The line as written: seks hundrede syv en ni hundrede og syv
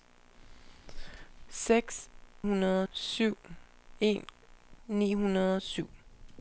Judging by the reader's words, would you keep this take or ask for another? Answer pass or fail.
pass